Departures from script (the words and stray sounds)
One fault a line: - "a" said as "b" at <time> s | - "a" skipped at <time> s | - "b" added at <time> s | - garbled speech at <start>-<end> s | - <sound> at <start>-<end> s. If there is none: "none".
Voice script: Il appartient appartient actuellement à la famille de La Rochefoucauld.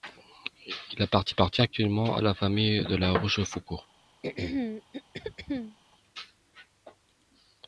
- throat clearing at 4.2-5.8 s